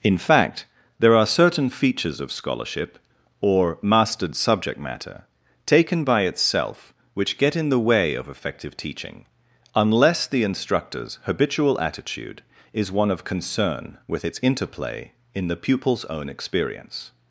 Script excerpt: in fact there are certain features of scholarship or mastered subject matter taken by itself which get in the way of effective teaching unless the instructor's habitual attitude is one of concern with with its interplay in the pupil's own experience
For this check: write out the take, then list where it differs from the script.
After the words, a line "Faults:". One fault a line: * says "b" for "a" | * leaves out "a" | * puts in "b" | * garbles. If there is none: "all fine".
in fact there are certain features of scholarship or mastered subject matter taken by itself which get in the way of effective teaching unless the instructor's habitual attitude is one of concern with its interplay in the pupil's own experience
Faults:
* leaves out "with"